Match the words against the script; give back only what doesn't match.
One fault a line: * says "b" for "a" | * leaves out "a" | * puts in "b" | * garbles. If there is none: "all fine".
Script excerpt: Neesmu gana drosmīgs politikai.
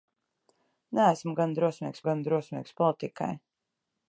* puts in "gana drosmīgs"